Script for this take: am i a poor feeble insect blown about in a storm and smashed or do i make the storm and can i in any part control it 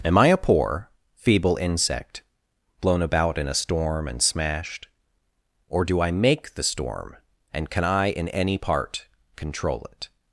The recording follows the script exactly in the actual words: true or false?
true